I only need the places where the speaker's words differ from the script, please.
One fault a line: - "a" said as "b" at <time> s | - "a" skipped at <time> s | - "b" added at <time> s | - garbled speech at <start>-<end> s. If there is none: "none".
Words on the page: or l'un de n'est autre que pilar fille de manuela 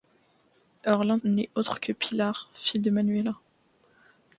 none